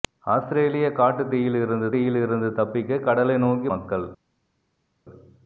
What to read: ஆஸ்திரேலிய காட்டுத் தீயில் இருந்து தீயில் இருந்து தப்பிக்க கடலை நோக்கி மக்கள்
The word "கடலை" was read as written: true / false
true